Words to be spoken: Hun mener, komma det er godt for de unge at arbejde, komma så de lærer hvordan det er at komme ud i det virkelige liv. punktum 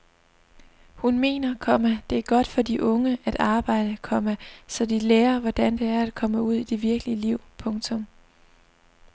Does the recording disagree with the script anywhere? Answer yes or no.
no